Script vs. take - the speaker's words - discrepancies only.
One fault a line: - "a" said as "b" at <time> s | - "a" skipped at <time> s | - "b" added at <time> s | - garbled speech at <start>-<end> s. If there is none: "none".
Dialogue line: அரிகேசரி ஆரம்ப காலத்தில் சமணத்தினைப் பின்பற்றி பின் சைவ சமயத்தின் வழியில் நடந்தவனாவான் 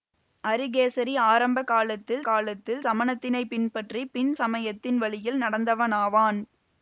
- "காலத்தில்" added at 2.2 s
- "சைவ" skipped at 4.3 s